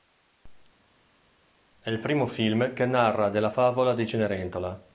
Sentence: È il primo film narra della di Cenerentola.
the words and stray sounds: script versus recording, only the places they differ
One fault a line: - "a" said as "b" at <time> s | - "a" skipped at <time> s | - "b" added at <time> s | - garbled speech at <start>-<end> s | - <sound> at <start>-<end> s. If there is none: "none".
- "che" added at 2.7 s
- "favola" added at 3.5 s